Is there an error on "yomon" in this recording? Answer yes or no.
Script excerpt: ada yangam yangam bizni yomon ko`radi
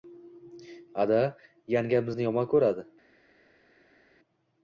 no